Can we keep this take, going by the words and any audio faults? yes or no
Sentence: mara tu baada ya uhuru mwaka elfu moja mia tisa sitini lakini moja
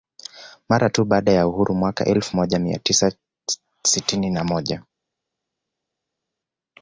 no